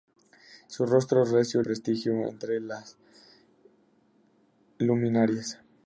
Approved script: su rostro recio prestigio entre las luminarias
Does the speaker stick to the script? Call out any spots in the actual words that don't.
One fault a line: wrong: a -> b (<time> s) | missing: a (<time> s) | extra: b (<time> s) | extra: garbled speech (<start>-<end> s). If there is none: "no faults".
no faults